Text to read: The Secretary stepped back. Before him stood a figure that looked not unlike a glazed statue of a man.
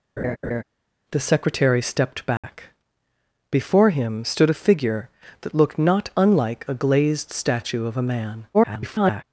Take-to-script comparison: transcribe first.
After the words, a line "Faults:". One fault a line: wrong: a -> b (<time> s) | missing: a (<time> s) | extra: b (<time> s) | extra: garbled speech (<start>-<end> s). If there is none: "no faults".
The Secretary stepped back. Before him stood a figure that looked not unlike a glazed statue of a man. [garbled]
Faults:
extra: garbled speech (8.5-9.2 s)